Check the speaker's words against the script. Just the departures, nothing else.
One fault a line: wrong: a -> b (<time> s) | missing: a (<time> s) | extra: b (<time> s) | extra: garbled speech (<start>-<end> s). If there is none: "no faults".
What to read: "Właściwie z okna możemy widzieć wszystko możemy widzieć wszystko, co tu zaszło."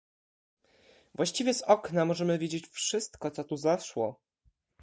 missing: możemy widzieć wszystko (3.3 s)